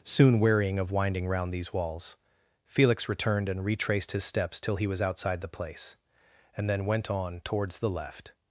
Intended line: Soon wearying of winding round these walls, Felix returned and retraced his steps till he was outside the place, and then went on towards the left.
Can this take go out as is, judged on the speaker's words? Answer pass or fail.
pass